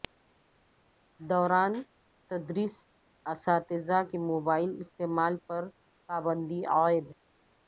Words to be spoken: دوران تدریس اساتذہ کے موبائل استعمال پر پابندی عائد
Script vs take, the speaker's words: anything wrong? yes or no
no